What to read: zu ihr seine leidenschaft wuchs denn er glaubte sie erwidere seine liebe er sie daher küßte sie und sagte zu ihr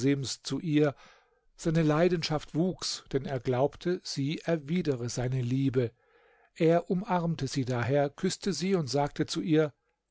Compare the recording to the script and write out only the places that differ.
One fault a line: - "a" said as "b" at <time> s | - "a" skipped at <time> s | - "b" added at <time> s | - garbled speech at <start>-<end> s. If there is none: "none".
- "umarmte" added at 6.9 s